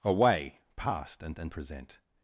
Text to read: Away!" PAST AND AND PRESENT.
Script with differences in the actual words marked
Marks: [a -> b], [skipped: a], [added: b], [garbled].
Away!" PAST AND AND PRESENT.